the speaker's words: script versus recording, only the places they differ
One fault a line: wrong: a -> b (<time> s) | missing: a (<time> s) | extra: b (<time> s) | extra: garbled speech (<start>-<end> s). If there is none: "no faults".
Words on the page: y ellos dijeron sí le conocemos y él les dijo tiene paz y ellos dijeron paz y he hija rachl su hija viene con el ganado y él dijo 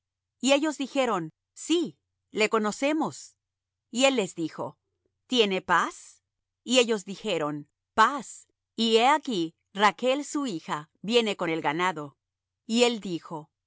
wrong: hija -> aquí (9.1 s)